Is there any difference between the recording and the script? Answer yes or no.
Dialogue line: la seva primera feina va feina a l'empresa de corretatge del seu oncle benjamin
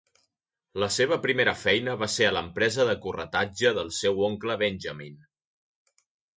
yes